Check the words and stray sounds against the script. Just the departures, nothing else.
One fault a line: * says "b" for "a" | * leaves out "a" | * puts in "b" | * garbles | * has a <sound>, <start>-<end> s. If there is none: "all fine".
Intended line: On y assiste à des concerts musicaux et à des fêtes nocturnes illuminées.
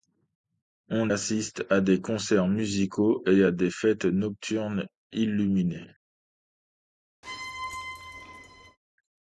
* leaves out "y"
* has a squeak, 7.2-8.8 s